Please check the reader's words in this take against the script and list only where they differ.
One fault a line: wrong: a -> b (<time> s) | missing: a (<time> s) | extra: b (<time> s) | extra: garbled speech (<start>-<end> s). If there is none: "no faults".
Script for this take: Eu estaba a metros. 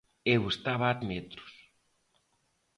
no faults